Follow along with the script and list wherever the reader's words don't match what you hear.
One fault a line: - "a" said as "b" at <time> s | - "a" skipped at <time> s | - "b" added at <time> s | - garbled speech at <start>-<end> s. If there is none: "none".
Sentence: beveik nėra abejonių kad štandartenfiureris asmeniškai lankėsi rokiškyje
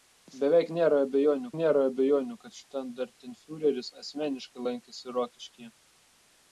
- "nėra abejonių" added at 1.6 s